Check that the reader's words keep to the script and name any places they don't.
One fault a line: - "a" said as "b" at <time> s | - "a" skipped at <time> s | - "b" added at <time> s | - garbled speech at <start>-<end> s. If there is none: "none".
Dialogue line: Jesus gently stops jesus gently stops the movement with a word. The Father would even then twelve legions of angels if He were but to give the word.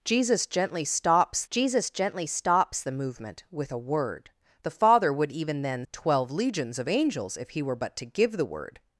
none